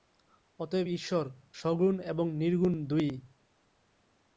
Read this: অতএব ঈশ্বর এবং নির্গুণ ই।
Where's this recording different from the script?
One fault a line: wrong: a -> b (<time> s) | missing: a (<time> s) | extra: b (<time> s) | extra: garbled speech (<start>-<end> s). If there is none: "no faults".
extra: সগুণ (1.5 s)
extra: দুই (2.9 s)